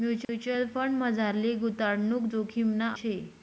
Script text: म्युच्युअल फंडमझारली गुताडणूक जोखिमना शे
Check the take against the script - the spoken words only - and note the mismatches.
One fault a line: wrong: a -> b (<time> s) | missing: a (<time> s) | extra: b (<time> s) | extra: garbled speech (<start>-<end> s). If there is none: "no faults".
no faults